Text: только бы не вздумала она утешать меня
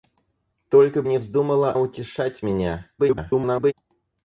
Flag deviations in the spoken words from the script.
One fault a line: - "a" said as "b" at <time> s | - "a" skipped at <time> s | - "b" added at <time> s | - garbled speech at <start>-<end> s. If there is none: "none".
- "бы" skipped at 1.0 s
- "она" skipped at 1.7 s
- garbled speech at 3.0-3.7 s